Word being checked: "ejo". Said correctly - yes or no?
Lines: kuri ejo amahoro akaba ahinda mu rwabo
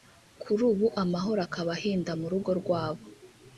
no